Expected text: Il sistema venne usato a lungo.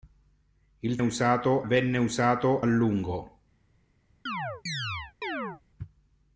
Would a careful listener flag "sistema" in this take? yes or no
yes